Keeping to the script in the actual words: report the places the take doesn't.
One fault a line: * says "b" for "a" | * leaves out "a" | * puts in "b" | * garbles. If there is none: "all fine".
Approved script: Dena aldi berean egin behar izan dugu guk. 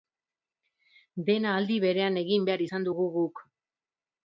all fine